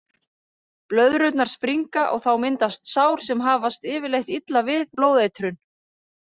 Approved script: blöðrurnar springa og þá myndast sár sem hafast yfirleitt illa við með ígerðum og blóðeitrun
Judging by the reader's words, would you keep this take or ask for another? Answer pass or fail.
fail